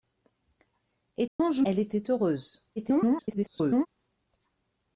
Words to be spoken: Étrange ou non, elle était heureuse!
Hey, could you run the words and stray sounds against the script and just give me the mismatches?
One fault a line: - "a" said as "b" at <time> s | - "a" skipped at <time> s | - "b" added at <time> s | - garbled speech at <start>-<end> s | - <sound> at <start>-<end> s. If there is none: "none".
- dropout at 1.3-1.4 s
- "non" skipped at 1.6 s
- garbled speech at 2.8-3.9 s